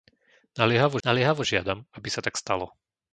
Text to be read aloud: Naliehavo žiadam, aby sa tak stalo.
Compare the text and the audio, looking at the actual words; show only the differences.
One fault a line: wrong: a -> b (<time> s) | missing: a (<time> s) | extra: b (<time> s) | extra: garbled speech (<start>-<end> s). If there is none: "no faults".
extra: naliehavo (1.0 s)